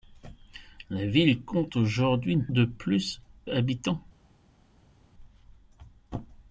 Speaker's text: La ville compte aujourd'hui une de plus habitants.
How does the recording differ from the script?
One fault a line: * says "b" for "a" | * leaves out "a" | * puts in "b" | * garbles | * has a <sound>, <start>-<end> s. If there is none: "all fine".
all fine